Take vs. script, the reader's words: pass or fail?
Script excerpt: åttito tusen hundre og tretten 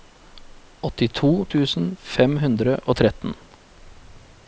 fail